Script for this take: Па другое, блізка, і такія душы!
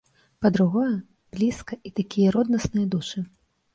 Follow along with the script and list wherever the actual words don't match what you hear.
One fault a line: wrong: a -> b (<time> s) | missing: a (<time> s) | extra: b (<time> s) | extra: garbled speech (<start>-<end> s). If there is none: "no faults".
extra: роднасныя (2.4 s)